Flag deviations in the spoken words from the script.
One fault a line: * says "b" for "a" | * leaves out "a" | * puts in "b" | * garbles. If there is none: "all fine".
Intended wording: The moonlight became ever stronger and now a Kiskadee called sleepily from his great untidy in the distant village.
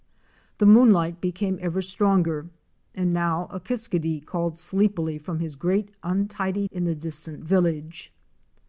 all fine